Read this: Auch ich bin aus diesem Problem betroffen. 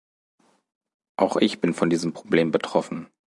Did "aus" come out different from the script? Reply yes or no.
yes